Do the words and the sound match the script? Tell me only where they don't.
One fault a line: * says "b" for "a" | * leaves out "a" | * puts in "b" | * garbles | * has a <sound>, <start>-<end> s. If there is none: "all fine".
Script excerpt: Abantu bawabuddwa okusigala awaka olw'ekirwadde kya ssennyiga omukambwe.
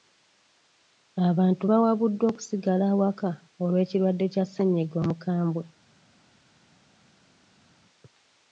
all fine